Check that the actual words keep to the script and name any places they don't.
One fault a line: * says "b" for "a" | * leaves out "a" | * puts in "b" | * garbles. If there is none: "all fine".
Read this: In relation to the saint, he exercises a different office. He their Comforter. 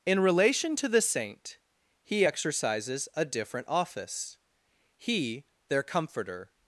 all fine